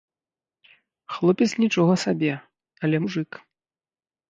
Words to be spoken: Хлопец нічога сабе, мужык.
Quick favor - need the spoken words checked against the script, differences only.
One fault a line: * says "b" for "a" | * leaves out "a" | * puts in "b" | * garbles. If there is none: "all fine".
* puts in "але"